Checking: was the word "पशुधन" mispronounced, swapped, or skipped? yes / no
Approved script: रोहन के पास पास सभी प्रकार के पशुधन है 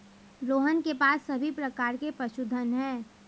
no